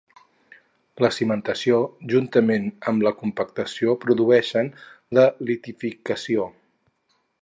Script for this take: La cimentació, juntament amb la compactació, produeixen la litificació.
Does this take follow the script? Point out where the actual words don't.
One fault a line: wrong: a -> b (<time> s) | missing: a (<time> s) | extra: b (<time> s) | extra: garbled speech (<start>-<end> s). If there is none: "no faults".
no faults